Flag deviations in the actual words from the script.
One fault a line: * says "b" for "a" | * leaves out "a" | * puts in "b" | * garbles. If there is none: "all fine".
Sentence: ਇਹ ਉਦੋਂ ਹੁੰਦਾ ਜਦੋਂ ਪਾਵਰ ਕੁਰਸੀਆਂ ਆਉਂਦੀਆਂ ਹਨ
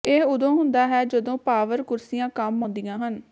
* puts in "ਹੈ"
* puts in "ਕੰਮ"